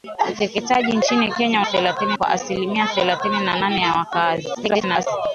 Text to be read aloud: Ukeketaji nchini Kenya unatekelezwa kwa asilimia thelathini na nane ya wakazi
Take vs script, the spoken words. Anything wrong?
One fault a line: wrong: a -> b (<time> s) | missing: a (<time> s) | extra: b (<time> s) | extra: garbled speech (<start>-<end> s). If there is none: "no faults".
wrong: unatekelezwa -> thelathini (1.6 s)
extra: garbled speech (4.5-5.1 s)